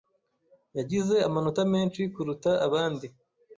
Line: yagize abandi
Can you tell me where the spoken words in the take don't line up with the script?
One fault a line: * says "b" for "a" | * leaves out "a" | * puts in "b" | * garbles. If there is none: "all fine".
* puts in "amanota menshi kuruta"